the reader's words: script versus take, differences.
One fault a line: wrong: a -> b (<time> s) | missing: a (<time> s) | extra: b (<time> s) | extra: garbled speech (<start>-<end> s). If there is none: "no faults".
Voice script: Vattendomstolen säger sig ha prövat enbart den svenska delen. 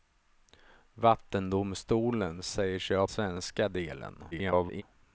missing: prövat enbart den (3.1 s)
extra: garbled speech (4.3-4.8 s)